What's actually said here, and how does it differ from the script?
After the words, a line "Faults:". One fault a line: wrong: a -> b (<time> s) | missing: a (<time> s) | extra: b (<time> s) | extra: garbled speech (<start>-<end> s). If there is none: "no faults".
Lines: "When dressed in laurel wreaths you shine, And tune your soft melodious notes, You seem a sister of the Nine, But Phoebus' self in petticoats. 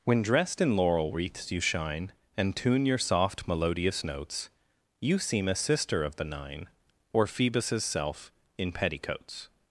"When dressed in laurel wreaths you shine, And tune your soft melodious notes, You seem a sister of the Nine, Or Phoebus' self in petticoats.
Faults:
wrong: But -> Or (7.1 s)